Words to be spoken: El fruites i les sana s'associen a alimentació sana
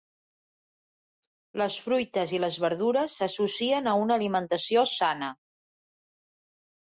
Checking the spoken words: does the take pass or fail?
fail